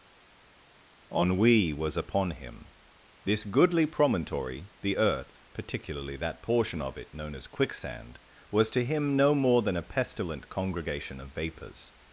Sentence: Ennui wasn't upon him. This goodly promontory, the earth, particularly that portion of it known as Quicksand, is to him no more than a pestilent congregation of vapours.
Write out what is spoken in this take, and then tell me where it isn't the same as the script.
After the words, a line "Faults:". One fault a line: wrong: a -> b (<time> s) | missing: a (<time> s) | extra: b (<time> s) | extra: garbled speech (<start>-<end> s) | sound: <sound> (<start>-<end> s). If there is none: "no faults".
Ennui was upon him. This goodly promontory, the earth, particularly that portion of it known as Quicksand, was to him no more than a pestilent congregation of vapours.
Faults:
wrong: wasn't -> was (1.7 s)
wrong: is -> was (8.5 s)